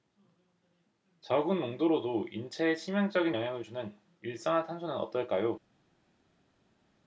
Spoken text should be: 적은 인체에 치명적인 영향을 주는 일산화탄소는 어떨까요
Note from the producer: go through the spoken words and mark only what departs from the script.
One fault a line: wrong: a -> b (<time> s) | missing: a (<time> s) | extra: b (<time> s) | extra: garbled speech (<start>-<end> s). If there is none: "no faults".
extra: 농도로도 (1.6 s)